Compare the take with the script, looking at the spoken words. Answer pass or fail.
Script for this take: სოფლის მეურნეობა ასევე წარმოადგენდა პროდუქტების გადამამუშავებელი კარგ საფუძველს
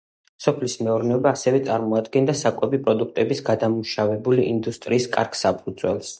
fail